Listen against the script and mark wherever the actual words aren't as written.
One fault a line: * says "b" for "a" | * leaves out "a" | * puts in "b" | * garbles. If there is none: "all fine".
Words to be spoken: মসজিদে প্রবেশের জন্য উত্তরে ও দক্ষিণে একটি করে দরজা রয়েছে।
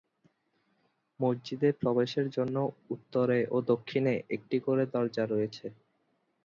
all fine